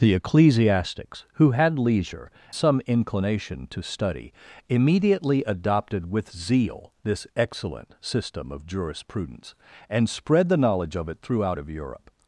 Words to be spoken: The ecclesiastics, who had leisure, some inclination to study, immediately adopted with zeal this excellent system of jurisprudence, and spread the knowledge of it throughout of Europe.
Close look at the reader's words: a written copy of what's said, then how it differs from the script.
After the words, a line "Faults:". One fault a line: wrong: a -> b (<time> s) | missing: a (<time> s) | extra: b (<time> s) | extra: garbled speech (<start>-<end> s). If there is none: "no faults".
The ecclesiastics, who had leisure, some inclination to study, immediately adopted with zeal this excellent system of jurisprudence, and spread the knowledge of it throughout of Europe.
Faults:
no faults